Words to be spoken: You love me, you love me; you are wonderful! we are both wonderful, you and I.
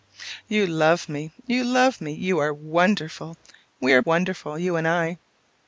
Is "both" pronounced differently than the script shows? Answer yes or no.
yes